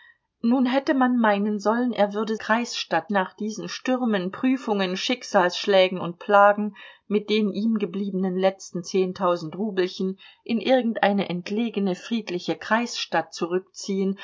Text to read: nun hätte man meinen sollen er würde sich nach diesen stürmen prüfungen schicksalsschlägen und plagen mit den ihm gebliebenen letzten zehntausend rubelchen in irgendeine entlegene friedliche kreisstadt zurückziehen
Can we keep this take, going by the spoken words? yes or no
no